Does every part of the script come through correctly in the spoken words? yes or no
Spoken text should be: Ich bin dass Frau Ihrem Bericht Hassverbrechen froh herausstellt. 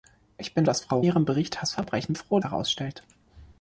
yes